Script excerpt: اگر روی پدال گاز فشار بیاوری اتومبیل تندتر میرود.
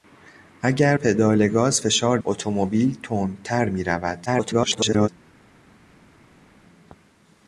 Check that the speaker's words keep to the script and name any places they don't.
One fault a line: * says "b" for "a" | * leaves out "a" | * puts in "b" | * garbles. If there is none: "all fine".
* leaves out "روی"
* leaves out "بیاوری"
* garbles